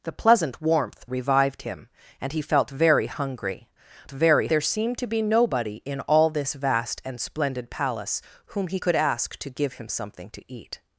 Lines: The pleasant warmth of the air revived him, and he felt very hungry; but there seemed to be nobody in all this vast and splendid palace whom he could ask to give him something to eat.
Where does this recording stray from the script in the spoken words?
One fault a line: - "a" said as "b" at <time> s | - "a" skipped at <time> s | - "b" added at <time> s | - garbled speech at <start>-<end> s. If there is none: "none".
- "of the air" skipped at 1.1 s
- "but" said as "very" at 4.1 s